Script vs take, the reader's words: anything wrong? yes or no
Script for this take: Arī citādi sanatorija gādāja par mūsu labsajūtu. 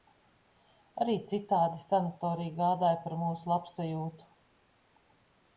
no